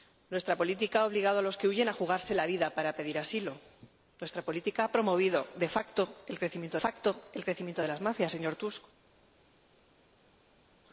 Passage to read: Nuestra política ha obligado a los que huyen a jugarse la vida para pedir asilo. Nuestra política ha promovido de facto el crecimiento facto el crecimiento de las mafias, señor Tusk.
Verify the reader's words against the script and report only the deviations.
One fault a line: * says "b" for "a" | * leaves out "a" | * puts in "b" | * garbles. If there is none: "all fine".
all fine